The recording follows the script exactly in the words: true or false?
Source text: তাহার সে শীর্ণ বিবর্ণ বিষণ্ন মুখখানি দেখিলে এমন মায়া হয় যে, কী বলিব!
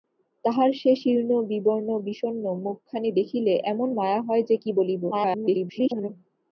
false